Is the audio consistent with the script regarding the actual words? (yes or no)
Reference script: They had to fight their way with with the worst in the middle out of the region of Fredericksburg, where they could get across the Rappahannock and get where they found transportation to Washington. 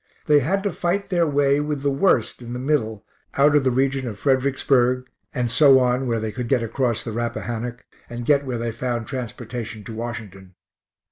no